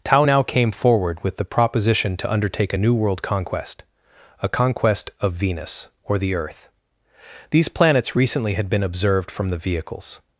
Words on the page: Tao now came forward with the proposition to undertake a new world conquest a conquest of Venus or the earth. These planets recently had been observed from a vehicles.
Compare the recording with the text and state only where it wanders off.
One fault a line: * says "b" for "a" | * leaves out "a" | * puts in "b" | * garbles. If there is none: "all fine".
* says "the" for "a"